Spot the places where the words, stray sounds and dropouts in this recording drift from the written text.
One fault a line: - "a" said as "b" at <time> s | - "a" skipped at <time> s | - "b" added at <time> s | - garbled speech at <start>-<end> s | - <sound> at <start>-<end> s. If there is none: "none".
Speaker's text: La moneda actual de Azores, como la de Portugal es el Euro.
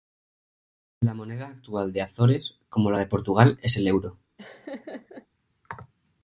- laugh at 4.4-5.3 s